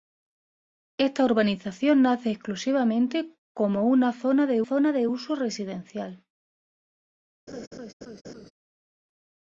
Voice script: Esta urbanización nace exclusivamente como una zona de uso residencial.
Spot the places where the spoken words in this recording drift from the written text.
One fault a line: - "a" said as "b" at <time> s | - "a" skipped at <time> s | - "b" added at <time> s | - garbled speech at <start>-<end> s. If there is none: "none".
- "zona de" added at 4.6 s